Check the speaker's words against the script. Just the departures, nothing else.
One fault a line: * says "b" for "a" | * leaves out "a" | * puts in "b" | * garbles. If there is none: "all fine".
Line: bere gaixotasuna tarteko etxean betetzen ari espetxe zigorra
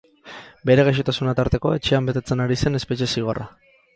* puts in "zen"